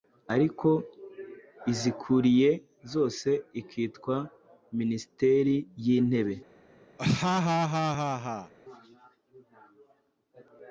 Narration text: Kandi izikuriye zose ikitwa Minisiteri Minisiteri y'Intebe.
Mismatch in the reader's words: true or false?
true